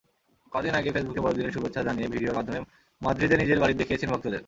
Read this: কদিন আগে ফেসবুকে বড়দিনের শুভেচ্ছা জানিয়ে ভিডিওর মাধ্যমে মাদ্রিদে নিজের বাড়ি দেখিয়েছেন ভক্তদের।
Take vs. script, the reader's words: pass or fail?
pass